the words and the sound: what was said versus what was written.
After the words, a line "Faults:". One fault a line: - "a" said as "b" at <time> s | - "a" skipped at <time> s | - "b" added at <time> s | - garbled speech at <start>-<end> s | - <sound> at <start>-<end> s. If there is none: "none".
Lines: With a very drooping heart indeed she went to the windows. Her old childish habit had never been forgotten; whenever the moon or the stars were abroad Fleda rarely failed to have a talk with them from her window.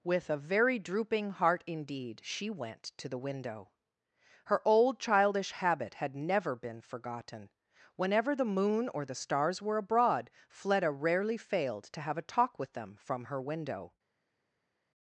With a very drooping heart indeed she went to the window. Her old childish habit had never been forgotten; whenever the moon or the stars were abroad Fleda rarely failed to have a talk with them from her window.
Faults:
- "windows" said as "window" at 3.2 s